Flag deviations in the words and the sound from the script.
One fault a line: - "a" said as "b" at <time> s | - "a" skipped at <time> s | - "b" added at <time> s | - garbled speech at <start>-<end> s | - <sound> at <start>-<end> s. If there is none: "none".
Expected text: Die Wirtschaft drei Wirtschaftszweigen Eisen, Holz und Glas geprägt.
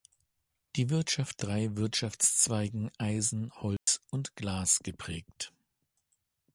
- dropout at 3.8-3.9 s